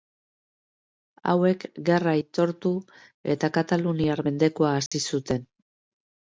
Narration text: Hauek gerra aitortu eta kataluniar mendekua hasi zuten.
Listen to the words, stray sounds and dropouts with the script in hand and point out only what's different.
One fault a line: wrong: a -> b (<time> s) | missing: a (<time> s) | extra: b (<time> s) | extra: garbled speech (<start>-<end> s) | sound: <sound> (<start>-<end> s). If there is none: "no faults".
sound: dropout (4.9-4.9 s)